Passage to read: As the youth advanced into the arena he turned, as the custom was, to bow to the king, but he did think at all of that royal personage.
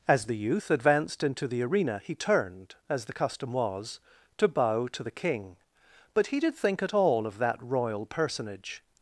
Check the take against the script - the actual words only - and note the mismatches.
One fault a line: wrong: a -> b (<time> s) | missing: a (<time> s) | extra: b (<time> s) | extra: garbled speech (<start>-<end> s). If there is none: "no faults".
no faults